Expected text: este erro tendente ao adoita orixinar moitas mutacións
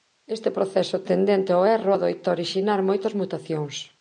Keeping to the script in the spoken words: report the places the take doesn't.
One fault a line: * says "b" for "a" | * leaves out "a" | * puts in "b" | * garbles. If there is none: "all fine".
* says "proceso" for "erro"
* puts in "erro"